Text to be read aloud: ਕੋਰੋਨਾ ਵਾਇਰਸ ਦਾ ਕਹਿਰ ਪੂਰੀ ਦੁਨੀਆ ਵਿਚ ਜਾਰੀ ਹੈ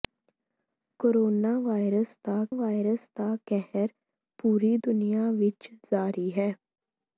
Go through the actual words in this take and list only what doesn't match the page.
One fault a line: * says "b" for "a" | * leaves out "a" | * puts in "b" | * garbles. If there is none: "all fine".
* puts in "ਵਾਇਰਸ ਦਾ"